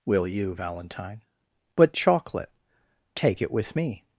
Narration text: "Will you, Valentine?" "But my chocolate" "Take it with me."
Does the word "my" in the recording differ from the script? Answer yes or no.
yes